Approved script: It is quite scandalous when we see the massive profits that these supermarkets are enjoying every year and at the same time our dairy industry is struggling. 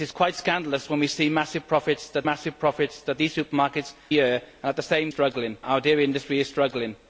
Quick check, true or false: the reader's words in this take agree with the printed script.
false